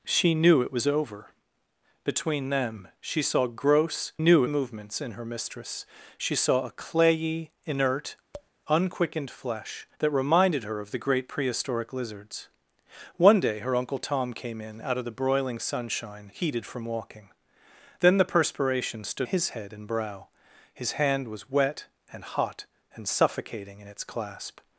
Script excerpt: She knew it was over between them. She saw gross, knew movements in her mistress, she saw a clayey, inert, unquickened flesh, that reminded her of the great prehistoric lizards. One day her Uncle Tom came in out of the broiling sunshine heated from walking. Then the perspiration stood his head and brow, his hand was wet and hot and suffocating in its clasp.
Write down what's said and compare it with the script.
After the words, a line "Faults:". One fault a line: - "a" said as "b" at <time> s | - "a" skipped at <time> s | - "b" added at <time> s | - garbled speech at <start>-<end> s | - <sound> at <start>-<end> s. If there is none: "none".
She knew it was over between them. She saw gross, knew movements in her mistress, she saw a clayey, inert, unquickened flesh, that reminded her of the great prehistoric lizards. One day her Uncle Tom came in out of the broiling sunshine heated from walking. Then the perspiration stood his head and brow, his hand was wet and hot and suffocating in its clasp.
Faults:
- tap at 8.3-8.5 s